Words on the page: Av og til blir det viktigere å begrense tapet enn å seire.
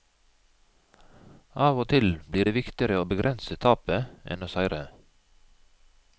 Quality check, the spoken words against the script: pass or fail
pass